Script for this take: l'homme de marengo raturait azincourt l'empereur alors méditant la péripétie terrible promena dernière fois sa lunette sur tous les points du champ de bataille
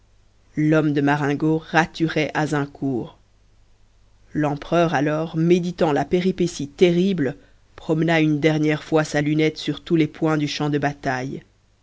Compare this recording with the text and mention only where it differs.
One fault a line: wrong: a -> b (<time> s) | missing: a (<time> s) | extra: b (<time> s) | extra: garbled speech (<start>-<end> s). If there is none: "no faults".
extra: une (8.2 s)